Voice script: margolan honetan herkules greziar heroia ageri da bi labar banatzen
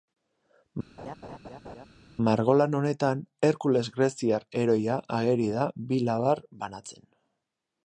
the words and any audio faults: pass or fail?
fail